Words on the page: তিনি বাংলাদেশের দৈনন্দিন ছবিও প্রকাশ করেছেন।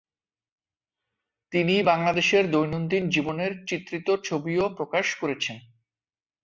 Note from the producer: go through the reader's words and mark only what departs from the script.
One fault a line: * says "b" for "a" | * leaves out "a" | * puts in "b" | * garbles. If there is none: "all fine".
* puts in "জীবনের চিত্রিত"